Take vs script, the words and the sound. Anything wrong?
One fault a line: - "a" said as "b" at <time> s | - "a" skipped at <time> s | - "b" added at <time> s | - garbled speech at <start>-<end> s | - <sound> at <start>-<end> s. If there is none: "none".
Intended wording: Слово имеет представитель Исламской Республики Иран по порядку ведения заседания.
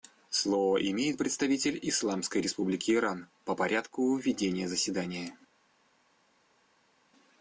none